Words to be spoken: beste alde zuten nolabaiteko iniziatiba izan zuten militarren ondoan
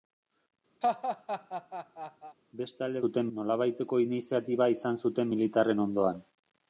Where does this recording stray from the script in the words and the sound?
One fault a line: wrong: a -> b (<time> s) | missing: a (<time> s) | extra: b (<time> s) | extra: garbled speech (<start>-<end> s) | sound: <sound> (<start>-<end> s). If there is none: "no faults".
sound: laugh (0.8-2.4 s)